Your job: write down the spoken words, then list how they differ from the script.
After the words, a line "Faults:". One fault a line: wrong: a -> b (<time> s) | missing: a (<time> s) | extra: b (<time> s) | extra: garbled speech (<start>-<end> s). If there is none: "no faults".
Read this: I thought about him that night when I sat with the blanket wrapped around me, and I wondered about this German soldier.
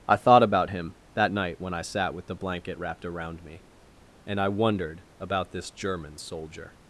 I thought about him that night when I sat with the blanket wrapped around me, and I wondered about this German soldier.
Faults:
no faults